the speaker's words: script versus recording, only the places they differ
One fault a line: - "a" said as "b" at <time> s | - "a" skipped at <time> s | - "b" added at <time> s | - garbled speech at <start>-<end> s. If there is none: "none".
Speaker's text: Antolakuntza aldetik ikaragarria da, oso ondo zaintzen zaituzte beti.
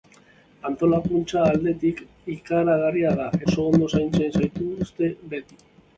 none